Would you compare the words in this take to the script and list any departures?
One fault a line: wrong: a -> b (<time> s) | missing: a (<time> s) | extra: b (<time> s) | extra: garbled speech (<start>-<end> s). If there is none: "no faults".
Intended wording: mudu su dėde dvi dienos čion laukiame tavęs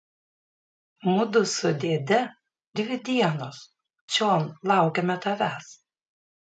no faults